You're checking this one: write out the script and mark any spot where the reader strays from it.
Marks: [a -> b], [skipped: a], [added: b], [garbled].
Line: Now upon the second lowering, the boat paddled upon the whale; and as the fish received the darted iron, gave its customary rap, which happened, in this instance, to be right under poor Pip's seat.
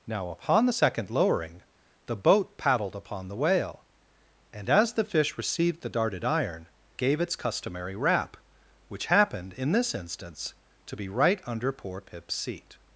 Now upon the second lowering, the boat paddled upon the whale; and as the fish received the darted iron, gave its customary rap, which happened, in this instance, to be right under poor Pip's seat.